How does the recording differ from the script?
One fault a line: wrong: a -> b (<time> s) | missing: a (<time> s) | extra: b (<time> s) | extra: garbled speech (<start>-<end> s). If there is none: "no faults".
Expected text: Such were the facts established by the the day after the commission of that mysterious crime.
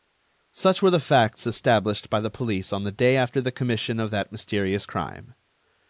extra: police on (2.3 s)